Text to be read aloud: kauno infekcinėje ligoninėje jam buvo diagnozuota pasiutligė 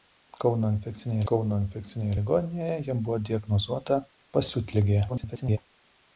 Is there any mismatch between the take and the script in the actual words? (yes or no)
yes